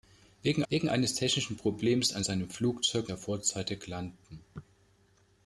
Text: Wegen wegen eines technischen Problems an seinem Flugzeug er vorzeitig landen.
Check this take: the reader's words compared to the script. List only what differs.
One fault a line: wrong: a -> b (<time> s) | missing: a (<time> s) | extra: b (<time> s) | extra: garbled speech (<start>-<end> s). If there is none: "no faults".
no faults